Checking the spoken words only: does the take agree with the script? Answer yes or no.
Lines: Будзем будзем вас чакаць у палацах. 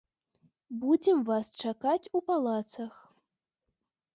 no